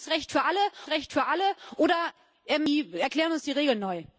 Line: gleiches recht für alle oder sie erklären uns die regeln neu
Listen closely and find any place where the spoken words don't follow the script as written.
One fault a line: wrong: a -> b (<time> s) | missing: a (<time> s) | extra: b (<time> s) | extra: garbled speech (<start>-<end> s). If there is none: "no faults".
extra: recht für alle (0.9 s)